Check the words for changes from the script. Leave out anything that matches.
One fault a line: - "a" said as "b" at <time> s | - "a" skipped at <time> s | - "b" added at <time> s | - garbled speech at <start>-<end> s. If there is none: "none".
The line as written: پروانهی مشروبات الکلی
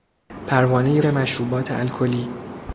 none